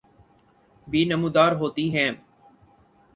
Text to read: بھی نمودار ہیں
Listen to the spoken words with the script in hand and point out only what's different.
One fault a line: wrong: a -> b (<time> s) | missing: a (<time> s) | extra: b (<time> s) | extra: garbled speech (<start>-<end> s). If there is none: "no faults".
extra: ہوتی (1.5 s)